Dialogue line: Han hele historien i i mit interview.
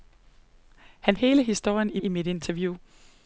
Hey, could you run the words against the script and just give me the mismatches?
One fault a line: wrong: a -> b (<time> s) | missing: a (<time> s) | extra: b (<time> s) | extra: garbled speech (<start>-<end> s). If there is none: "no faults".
no faults